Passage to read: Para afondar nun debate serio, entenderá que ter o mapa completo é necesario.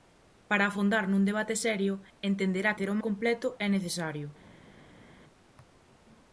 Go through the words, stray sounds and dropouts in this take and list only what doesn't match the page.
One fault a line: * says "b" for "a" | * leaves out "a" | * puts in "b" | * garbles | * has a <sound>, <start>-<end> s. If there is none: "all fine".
* leaves out "que"
* leaves out "mapa"